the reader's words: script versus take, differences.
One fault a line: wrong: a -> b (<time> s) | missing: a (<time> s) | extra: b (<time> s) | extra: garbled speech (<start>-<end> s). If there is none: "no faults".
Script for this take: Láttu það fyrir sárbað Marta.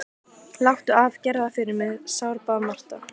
extra: af gerðu (1.0 s)
extra: mig (1.8 s)